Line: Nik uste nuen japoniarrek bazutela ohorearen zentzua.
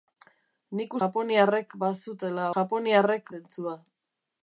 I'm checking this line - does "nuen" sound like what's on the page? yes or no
no